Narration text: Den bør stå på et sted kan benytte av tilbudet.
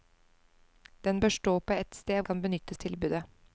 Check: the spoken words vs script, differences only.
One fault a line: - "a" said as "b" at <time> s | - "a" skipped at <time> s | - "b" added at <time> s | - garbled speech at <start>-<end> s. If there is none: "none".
none